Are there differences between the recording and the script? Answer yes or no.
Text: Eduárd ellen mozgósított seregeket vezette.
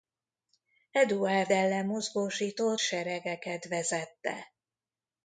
no